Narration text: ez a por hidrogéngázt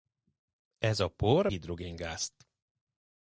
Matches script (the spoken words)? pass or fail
pass